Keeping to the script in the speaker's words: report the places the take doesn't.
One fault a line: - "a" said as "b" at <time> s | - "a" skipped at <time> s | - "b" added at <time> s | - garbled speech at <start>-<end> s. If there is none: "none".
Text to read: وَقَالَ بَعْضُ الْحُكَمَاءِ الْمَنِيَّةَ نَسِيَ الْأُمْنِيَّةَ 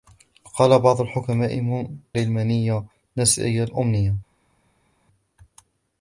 none